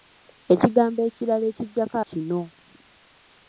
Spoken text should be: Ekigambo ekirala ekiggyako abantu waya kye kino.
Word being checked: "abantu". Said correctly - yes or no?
no